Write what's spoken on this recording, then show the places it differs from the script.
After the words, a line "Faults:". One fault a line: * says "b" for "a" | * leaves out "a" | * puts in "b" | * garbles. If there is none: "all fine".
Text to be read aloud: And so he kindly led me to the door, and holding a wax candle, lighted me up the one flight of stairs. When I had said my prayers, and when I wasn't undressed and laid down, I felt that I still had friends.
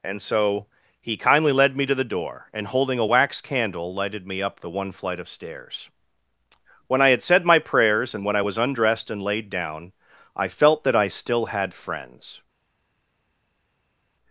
And so he kindly led me to the door, and holding a wax candle, lighted me up the one flight of stairs. When I had said my prayers, and when I was undressed and laid down, I felt that I still had friends.
Faults:
* says "was" for "wasn't"